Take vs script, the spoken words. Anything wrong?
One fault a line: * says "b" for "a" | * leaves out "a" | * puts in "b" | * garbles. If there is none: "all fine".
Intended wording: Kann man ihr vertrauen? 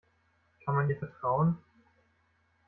all fine